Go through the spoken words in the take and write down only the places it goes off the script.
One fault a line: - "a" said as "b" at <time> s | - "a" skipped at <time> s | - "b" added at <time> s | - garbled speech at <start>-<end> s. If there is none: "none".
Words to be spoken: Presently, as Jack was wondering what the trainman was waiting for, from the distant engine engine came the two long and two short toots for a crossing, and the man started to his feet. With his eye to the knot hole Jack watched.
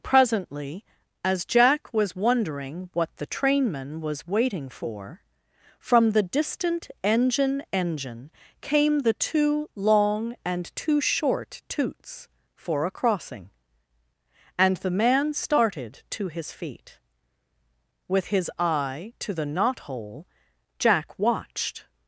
none